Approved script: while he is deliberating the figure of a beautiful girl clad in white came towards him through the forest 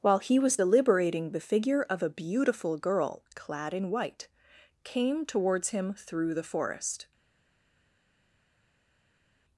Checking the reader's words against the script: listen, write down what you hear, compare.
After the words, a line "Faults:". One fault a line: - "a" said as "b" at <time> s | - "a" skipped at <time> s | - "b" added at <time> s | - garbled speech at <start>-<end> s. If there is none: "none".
while he was deliberating the figure of a beautiful girl clad in white came towards him through the forest
Faults:
- "is" said as "was" at 0.4 s